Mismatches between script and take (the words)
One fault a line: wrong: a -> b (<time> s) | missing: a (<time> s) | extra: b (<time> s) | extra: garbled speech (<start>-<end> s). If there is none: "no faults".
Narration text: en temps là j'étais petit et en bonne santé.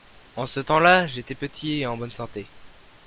extra: ce (0.5 s)